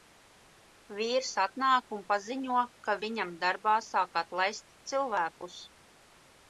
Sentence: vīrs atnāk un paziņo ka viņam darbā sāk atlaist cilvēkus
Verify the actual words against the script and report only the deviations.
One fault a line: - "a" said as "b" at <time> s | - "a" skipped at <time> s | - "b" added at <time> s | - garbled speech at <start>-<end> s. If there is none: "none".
none